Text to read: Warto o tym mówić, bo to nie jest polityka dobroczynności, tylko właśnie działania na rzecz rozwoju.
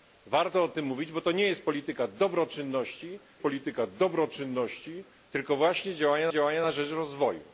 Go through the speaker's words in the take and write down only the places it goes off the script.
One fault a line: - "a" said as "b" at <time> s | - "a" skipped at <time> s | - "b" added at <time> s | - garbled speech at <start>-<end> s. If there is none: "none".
- "polityka dobroczynności" added at 3.4 s
- "działania" added at 6.3 s